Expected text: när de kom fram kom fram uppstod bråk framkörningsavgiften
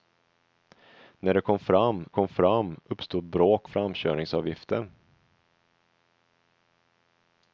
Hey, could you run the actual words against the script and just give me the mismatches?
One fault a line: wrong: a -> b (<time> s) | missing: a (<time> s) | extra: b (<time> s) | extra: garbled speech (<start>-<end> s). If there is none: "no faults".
no faults